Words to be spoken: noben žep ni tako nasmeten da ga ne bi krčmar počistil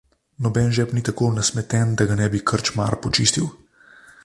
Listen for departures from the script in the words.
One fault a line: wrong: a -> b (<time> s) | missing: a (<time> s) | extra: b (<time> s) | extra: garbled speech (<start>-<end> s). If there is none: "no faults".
no faults